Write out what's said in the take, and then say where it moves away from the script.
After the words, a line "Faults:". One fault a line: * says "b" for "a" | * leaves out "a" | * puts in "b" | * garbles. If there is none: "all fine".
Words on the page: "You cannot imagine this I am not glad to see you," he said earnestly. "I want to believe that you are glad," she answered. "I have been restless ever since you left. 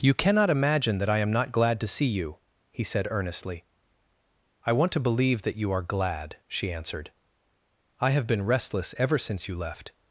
"You cannot imagine that I am not glad to see you," he said earnestly. "I want to believe that you are glad," she answered. "I have been restless ever since you left.
Faults:
* says "that" for "this"